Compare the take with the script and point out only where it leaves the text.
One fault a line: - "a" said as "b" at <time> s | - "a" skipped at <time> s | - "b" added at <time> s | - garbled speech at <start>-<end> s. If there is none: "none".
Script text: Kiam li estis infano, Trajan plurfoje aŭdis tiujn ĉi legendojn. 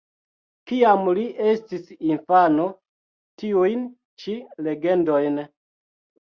- "Trajan plurfoje aŭdis" skipped at 2.6 s